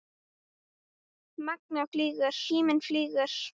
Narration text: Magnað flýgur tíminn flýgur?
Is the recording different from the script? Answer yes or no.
no